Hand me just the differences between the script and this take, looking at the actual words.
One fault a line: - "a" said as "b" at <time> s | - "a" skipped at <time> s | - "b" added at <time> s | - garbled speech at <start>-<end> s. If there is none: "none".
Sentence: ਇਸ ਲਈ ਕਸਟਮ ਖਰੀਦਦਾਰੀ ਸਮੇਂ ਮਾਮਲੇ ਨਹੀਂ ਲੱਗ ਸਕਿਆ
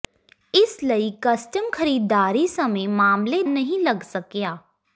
none